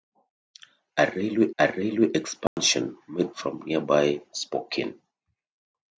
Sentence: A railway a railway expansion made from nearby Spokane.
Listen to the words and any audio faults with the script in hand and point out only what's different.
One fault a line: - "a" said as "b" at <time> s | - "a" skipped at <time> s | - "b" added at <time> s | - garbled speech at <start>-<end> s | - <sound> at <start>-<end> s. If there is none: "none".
- dropout at 2.5-2.6 s